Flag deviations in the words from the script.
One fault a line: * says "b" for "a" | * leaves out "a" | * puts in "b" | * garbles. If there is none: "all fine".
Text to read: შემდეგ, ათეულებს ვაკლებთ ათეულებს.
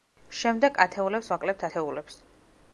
all fine